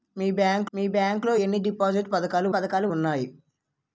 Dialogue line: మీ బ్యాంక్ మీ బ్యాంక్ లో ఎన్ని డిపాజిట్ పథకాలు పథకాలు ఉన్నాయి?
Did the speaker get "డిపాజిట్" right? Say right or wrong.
right